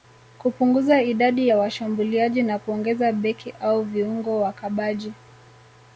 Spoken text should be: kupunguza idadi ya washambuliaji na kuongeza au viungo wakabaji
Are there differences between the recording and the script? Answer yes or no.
yes